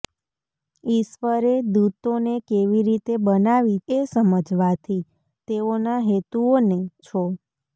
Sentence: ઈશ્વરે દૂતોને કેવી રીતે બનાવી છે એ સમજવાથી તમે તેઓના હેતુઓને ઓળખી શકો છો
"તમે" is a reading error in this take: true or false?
true